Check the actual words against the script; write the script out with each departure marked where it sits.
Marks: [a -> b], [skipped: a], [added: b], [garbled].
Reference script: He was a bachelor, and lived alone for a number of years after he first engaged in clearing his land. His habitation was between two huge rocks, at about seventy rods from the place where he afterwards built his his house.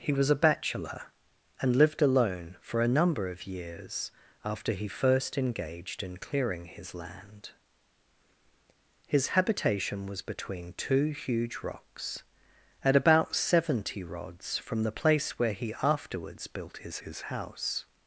He was a bachelor, and lived alone for a number of years after he first engaged in clearing his land. His habitation was between two huge rocks, at about seventy rods from the place where he afterwards built his his house.